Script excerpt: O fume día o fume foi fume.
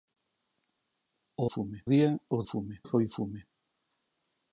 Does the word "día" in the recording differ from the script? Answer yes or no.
no